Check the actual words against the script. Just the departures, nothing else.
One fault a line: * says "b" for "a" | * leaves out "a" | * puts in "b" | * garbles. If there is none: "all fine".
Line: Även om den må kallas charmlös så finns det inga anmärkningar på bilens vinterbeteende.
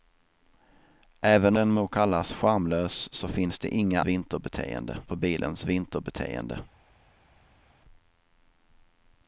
* leaves out "om"
* says "vinterbeteende" for "anmärkningar"